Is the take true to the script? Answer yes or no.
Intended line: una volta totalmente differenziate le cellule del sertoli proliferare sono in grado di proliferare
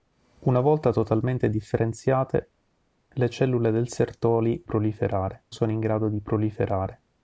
yes